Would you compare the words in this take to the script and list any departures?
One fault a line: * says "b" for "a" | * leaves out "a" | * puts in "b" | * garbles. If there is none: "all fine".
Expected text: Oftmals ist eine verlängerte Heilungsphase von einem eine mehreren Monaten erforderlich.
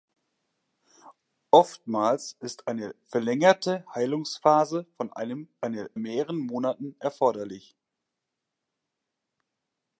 all fine